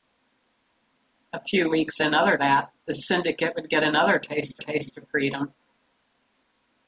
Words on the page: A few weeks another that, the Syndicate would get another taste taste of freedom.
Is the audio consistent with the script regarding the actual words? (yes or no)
yes